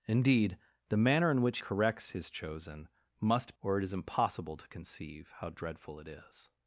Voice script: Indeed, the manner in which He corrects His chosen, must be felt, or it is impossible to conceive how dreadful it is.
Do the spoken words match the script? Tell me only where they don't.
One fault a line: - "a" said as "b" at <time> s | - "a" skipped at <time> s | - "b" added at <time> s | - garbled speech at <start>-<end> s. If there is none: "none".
- "He" skipped at 1.6 s
- "be felt" skipped at 3.5 s